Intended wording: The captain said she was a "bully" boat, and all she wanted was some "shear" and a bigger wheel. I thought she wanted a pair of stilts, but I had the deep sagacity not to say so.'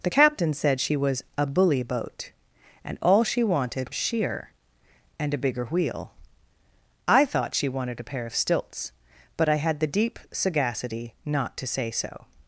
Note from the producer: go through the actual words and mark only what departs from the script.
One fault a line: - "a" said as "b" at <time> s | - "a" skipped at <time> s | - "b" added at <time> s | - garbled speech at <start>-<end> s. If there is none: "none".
- "was some" skipped at 3.9 s